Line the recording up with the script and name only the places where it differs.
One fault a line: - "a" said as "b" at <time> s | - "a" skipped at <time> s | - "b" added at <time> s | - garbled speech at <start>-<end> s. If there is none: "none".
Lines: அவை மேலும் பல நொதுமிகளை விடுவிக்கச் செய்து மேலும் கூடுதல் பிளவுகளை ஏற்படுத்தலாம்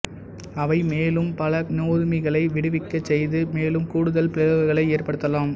none